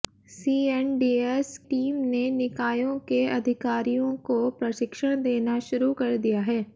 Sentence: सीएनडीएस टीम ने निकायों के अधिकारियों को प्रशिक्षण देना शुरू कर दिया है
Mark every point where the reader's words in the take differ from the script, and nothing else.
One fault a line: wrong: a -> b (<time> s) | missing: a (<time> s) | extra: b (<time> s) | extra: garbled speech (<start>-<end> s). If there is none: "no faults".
no faults